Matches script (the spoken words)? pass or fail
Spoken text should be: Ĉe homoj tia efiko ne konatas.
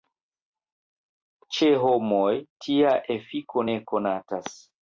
pass